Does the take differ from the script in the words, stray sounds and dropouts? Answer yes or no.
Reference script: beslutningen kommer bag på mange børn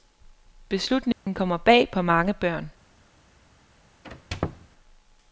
yes